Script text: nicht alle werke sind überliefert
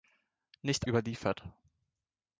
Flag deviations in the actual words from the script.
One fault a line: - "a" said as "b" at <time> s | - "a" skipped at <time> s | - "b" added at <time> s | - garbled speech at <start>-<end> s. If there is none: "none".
- "alle werke sind" skipped at 0.9 s